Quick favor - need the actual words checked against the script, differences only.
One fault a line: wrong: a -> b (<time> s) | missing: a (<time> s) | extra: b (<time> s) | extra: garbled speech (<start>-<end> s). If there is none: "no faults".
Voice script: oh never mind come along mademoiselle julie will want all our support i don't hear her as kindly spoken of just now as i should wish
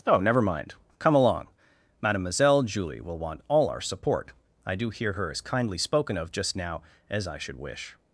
wrong: don't -> do (4.8 s)